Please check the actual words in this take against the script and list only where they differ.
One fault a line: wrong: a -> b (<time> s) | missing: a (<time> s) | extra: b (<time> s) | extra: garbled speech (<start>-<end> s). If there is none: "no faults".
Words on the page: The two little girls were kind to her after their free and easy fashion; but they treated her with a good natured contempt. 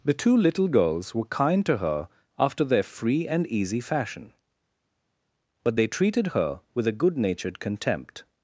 no faults